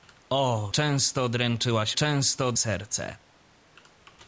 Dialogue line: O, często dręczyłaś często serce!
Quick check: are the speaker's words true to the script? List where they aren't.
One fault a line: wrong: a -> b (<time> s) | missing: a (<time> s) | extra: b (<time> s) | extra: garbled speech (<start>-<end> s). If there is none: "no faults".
no faults